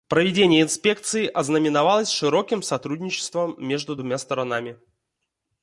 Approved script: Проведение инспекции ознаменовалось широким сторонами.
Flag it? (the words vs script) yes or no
yes